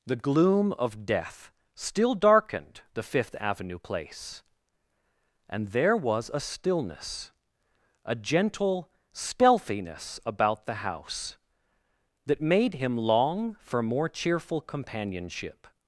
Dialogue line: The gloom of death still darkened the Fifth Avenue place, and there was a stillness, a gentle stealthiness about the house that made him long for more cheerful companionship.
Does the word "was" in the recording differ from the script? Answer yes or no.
no